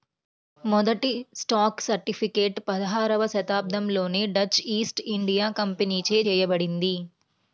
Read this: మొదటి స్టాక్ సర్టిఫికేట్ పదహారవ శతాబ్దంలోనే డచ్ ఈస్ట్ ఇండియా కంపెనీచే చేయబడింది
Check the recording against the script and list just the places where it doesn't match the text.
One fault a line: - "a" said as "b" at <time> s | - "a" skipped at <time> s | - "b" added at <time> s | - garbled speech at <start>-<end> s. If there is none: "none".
none